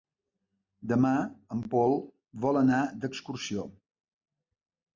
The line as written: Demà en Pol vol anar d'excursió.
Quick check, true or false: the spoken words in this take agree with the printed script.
true